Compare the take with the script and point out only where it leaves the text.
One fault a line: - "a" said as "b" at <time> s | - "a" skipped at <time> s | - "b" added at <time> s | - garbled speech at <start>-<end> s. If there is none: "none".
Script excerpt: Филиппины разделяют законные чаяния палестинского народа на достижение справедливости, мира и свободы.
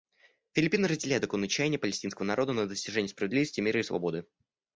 none